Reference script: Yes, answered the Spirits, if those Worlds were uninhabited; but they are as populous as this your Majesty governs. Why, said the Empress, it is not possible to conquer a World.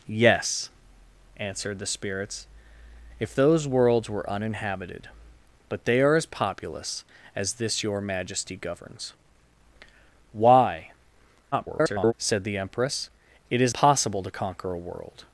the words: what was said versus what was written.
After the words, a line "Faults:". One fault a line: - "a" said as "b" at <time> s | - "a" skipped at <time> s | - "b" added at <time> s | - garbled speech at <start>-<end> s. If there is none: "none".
Yes, answered the Spirits, if those Worlds were uninhabited; but they are as populous as this your Majesty governs. Why, [garbled] said the Empress, it is possible to conquer a World.
Faults:
- garbled speech at 11.5-12.1 s
- "not" skipped at 13.7 s